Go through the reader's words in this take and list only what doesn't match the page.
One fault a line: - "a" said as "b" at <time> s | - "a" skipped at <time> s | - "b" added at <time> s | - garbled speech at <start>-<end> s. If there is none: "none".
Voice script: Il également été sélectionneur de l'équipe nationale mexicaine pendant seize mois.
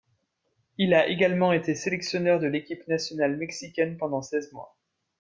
- "a" added at 0.9 s